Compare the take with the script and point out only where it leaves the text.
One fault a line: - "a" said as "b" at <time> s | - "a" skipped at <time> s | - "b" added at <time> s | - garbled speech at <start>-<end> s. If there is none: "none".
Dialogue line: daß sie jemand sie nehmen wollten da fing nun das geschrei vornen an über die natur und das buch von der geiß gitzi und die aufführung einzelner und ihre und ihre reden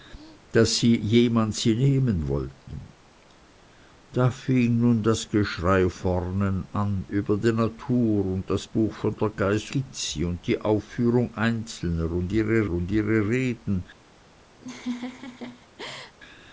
none